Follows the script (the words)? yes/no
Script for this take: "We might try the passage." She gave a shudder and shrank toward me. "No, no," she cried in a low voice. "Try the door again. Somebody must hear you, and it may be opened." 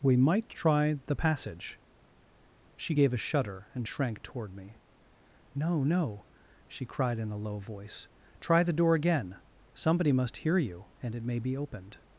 yes